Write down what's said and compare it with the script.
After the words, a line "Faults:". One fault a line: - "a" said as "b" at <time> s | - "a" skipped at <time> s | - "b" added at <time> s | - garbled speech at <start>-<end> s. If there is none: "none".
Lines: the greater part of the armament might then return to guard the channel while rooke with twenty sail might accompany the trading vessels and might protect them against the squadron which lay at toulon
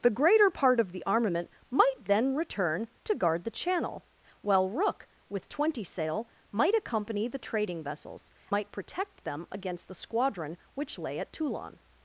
the greater part of the armament might then return to guard the channel while rooke with twenty sail might accompany the trading vessels might protect them against the squadron which lay at toulon
Faults:
- "and" skipped at 8.3 s